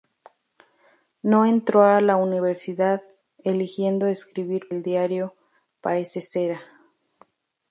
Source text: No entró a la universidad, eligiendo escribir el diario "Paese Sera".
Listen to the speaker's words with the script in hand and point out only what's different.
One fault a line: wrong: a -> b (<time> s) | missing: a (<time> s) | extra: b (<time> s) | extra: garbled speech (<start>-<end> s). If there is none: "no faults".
no faults